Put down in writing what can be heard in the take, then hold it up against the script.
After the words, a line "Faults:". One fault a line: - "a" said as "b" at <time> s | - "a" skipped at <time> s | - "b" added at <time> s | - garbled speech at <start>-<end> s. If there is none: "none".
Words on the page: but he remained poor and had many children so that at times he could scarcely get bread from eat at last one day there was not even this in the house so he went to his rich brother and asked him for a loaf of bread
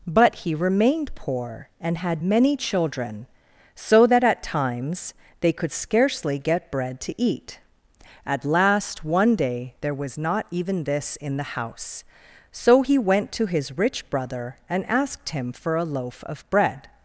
but he remained poor and had many children so that at times they could scarcely get bread to eat at last one day there was not even this in the house so he went to his rich brother and asked him for a loaf of bread
Faults:
- "he" said as "they" at 5.4 s
- "from" said as "to" at 7.0 s